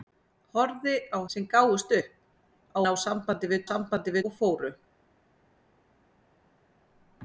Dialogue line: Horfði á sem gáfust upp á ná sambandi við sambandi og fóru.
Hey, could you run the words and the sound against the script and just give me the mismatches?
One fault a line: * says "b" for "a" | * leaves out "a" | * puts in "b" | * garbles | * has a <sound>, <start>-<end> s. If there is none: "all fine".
all fine